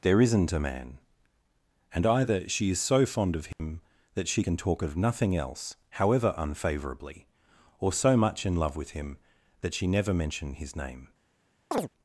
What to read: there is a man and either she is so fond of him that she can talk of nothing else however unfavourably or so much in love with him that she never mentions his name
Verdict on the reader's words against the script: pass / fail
fail